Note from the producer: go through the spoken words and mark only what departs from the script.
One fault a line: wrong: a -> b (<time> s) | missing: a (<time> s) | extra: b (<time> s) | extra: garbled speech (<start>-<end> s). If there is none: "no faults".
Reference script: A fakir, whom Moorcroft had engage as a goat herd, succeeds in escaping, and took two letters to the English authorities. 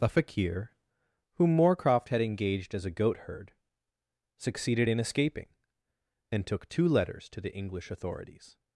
wrong: engage -> engaged (2.2 s)
wrong: succeeds -> succeeded (4.4 s)